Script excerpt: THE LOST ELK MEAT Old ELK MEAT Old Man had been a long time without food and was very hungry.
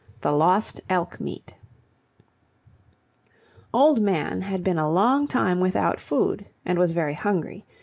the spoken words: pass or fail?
fail